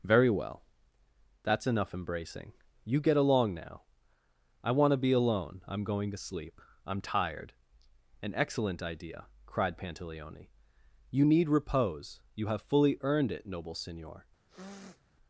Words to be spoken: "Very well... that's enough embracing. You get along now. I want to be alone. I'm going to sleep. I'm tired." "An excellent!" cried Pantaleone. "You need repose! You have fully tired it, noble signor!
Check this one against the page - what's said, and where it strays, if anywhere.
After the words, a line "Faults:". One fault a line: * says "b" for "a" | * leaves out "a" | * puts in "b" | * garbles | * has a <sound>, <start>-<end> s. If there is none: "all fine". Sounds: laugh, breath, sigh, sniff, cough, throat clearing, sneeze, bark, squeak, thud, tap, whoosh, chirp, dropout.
"Very well... that's enough embracing. You get along now. I want to be alone. I'm going to sleep. I'm tired." "An excellent idea!" cried Pantaleone. "You need repose! You have fully earned it, noble signor!
Faults:
* puts in "idea"
* says "earned" for "tired"
* has a sniff, 14.5-15.0 s